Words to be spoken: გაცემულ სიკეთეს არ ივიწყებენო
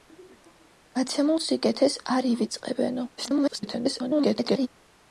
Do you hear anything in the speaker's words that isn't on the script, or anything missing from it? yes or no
yes